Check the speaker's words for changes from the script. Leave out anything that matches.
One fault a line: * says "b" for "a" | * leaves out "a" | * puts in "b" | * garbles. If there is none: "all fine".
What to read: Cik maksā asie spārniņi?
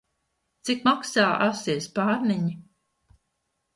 all fine